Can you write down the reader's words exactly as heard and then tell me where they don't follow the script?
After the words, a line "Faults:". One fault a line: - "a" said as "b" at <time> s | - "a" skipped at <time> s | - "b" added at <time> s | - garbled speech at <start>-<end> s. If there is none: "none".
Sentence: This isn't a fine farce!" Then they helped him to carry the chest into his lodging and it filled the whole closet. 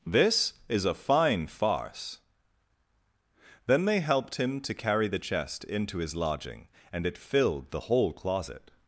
This is a fine farce!" Then they helped him to carry the chest into his lodging and it filled the whole closet.
Faults:
- "isn't" said as "is" at 0.7 s